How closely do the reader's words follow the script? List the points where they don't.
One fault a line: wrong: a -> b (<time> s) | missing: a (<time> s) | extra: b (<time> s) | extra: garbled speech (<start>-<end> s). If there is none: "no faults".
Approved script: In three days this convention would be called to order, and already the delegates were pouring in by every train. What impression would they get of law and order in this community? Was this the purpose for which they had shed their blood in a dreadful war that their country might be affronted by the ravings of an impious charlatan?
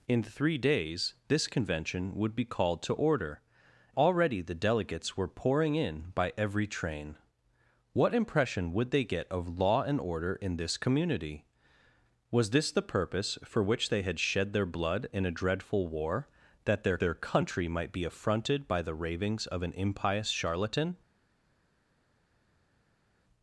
missing: and (3.4 s)
extra: their (17.0 s)